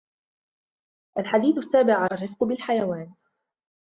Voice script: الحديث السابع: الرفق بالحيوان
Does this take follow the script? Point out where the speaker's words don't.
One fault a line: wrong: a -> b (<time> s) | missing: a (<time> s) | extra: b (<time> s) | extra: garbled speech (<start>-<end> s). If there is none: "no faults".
no faults